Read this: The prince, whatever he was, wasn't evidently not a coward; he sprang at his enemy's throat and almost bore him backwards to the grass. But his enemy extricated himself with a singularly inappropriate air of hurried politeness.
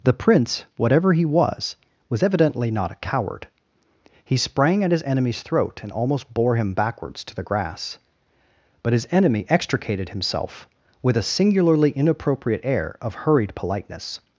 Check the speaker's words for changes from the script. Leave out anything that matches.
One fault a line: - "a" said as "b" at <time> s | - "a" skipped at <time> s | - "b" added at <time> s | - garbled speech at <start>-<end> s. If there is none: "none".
- "wasn't" said as "was" at 2.1 s